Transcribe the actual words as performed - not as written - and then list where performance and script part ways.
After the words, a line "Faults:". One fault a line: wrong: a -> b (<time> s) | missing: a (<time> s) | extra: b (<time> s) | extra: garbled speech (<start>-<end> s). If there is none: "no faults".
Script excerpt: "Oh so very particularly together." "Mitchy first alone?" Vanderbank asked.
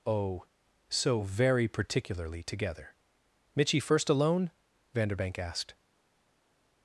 "Oh so very particularly together." "Mitchy first alone?" Vanderbank asked.
Faults:
no faults